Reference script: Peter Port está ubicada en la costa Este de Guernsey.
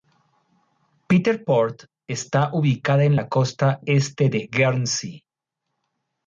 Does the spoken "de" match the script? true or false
true